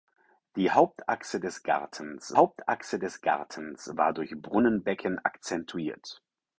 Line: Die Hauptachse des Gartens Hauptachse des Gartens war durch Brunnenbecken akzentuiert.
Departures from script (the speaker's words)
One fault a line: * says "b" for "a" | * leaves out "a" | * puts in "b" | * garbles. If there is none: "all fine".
all fine